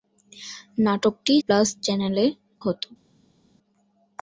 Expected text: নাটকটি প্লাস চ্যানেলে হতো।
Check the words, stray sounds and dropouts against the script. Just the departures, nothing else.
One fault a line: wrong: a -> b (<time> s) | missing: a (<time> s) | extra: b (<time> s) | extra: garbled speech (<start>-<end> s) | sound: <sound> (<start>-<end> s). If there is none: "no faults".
no faults